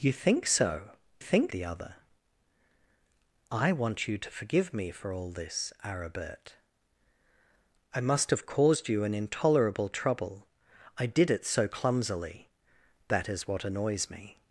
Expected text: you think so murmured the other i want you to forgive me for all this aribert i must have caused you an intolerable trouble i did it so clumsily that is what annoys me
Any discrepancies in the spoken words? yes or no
yes